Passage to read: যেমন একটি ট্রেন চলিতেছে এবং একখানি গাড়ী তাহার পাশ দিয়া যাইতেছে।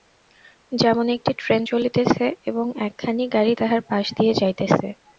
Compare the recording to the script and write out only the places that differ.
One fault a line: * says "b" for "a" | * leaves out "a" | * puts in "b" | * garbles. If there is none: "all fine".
all fine